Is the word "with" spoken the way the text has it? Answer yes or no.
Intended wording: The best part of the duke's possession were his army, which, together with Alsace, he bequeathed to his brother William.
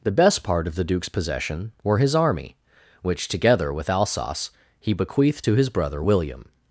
yes